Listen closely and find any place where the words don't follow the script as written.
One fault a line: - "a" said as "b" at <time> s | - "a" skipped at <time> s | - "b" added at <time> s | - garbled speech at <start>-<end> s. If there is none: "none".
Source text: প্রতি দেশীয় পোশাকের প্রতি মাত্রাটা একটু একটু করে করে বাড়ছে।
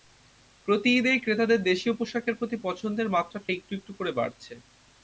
- "ঈদেই ক্রেতাদের" added at 1.0 s
- "পছন্দের" added at 2.6 s
- "করে" skipped at 4.1 s